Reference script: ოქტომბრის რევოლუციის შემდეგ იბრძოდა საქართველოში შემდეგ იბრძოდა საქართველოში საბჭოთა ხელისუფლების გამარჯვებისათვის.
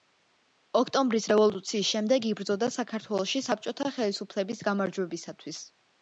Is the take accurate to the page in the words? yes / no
no